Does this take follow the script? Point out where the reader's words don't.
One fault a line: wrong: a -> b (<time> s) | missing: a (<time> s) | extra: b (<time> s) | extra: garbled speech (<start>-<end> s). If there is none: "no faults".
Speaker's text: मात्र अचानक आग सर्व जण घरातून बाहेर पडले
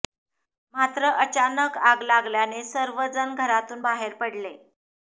extra: लागल्याने (2.0 s)